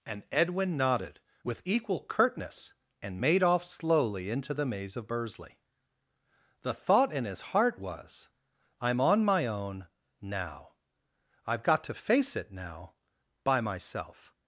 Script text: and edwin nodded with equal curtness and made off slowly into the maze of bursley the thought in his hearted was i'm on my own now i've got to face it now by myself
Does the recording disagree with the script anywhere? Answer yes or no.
yes